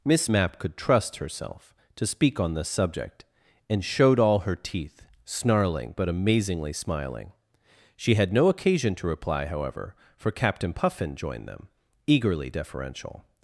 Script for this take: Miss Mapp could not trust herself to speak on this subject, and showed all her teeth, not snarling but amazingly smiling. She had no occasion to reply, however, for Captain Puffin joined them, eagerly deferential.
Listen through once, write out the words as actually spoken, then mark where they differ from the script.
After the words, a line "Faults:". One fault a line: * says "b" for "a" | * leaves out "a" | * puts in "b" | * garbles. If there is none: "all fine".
Miss Mapp could trust herself to speak on this subject, and showed all her teeth, snarling but amazingly smiling. She had no occasion to reply, however, for Captain Puffin joined them, eagerly deferential.
Faults:
* leaves out "not"
* leaves out "not"